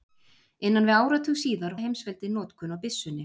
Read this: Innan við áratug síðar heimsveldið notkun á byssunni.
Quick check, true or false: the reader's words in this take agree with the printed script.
true